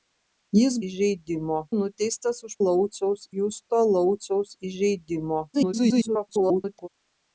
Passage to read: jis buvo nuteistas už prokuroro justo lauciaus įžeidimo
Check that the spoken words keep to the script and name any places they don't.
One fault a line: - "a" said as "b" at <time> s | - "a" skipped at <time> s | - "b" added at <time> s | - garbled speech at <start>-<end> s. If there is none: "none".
- "buvo" said as "įžeidimo" at 0.9 s
- "prokuroro" said as "lauciaus" at 2.6 s
- garbled speech at 5.5-6.9 s